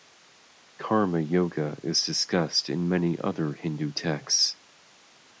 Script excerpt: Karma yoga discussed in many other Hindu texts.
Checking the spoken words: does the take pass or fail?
fail